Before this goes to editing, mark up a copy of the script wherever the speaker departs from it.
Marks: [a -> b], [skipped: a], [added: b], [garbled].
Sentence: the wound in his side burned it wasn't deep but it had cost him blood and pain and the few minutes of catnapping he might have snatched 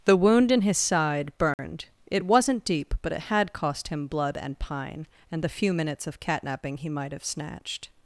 the wound in his side burned it wasn't deep but it had cost him blood and [pain -> pine] and the few minutes of catnapping he might have snatched